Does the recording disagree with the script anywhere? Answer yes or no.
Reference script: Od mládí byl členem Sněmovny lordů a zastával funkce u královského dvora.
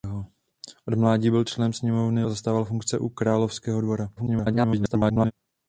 yes